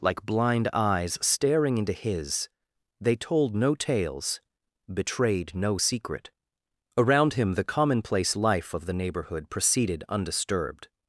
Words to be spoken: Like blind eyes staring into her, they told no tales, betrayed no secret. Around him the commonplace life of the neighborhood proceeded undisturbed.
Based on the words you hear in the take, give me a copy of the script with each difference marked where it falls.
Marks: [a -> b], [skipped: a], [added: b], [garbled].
Like blind eyes staring into [her, -> his] they told no tales, betrayed no secret. Around him the commonplace life of the neighborhood proceeded undisturbed.